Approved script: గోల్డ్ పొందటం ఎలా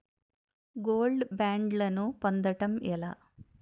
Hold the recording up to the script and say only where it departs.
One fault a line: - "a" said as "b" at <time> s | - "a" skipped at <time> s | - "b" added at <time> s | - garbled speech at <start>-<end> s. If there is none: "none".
- "బ్యాండ్లను" added at 1.3 s